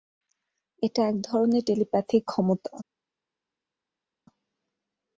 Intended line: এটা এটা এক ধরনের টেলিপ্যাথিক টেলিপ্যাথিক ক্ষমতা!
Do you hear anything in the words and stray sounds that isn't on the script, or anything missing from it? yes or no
yes